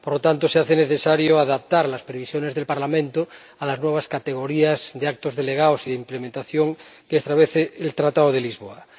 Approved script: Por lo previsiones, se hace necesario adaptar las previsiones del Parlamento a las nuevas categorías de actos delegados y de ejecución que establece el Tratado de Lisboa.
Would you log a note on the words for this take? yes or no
yes